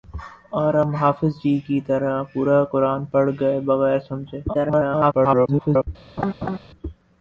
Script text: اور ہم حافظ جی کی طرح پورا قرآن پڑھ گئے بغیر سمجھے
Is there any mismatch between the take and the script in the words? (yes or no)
yes